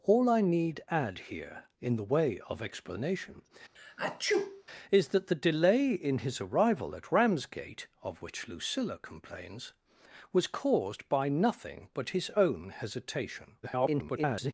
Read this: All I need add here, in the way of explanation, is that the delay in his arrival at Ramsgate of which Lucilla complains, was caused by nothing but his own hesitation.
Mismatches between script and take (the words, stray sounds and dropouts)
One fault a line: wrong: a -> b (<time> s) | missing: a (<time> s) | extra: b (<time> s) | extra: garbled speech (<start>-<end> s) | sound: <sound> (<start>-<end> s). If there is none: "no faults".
sound: sneeze (3.8-4.6 s)
extra: garbled speech (13.6-14.5 s)